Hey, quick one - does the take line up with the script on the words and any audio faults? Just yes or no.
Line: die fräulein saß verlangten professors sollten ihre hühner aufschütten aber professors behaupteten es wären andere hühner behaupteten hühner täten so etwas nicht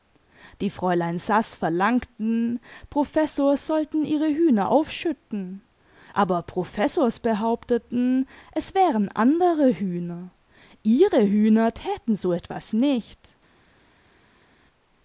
no